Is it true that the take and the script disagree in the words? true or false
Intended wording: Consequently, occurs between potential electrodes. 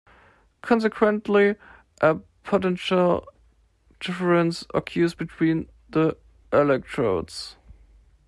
true